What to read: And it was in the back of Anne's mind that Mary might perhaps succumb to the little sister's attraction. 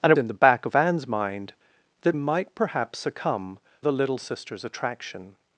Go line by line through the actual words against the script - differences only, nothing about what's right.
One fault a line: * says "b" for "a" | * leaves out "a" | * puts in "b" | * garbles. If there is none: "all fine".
* leaves out "was"
* leaves out "Mary"
* leaves out "to"